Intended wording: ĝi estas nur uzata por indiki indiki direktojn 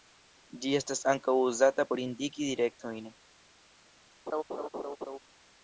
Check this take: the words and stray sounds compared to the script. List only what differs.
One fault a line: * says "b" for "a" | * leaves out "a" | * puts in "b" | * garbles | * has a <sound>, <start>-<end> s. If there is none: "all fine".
* says "ankaŭ" for "nur"
* leaves out "indiki"
* has a laugh, 4.3-5.2 s